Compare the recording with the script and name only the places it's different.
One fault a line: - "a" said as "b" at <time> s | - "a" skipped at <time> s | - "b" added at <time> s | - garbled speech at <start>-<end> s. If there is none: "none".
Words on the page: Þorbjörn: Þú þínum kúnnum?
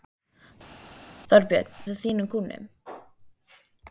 none